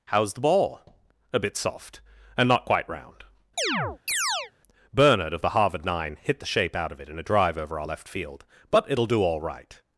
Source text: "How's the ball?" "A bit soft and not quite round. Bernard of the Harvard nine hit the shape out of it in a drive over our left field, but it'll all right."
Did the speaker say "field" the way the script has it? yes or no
yes